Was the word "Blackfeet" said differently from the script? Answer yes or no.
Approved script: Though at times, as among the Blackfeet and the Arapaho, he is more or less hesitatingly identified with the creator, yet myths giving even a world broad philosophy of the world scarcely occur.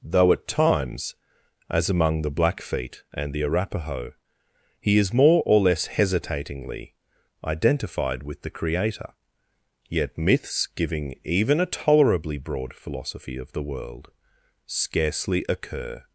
no